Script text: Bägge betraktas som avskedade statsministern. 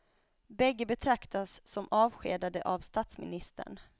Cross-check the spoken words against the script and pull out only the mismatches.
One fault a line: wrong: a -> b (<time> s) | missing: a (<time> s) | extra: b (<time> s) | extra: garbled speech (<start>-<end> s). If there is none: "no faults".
extra: av (2.6 s)